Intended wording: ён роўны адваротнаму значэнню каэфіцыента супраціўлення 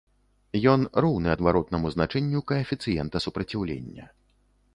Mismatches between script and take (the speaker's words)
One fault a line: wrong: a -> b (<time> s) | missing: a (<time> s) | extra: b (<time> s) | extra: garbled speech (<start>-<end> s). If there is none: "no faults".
no faults